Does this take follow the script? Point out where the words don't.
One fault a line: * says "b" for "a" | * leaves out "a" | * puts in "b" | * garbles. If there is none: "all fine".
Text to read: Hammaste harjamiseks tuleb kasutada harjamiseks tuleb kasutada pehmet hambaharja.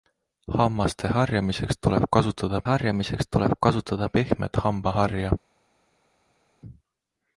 all fine